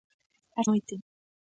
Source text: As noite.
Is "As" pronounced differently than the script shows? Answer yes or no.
no